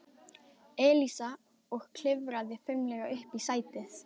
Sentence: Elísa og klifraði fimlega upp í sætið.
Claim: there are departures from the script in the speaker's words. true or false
false